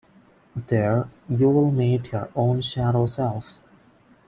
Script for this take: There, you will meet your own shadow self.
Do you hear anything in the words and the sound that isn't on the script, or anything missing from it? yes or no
no